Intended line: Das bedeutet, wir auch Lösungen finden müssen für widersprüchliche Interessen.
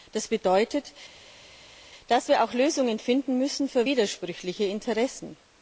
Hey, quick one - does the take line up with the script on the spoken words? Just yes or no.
no